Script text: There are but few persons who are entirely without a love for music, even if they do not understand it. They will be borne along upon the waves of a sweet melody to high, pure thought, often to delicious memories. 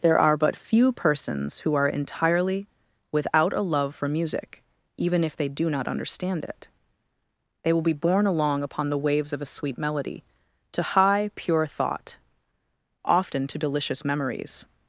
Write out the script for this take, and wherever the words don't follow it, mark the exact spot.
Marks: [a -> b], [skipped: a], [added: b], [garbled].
There are but few persons who are entirely without a love for music, even if they do not understand it. They will be borne along upon the waves of a sweet melody to high, pure thought, often to delicious memories.